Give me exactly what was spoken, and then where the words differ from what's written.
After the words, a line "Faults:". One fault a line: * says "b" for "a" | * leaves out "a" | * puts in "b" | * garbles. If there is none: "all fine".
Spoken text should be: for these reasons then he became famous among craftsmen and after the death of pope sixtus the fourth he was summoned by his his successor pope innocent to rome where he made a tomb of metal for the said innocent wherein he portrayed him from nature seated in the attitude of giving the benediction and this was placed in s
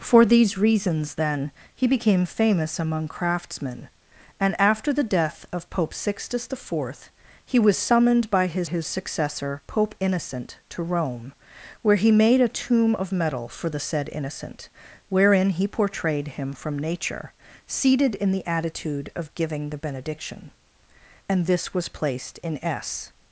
for these reasons then he became famous among craftsmen and after the death of pope sixtus the fourth he was summoned by his his successor pope innocent to rome where he made a tomb of metal for the said innocent wherein he portrayed him from nature seated in the attitude of giving the benediction and this was placed in s
Faults:
all fine